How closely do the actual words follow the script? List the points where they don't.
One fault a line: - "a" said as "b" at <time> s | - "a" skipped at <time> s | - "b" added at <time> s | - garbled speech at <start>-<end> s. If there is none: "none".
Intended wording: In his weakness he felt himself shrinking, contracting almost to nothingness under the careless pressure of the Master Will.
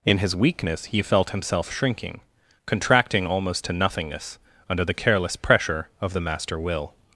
none